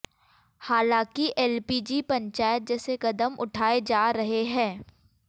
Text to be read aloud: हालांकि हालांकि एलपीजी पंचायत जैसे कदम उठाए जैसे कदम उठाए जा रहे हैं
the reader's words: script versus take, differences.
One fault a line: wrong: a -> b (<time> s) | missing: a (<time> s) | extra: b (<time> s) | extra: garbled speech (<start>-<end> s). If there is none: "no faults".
missing: हालांकि (1.3 s)
missing: जैसे कदम उठाए (3.8 s)